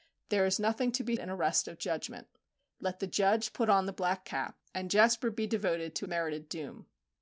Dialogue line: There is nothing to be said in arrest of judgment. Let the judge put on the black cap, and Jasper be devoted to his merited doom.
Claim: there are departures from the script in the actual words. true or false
true